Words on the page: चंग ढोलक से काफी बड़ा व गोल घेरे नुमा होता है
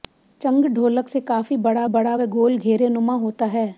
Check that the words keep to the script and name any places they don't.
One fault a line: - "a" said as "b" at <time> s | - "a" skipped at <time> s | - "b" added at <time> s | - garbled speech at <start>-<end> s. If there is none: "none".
- "बड़ा" added at 1.9 s